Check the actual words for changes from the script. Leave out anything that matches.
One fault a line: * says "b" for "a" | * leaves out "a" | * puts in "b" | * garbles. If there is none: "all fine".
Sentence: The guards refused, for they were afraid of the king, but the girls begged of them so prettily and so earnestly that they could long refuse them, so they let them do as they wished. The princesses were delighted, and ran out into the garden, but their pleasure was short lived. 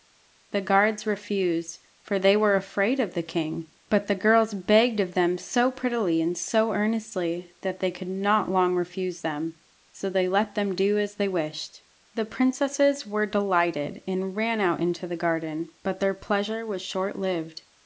* puts in "not"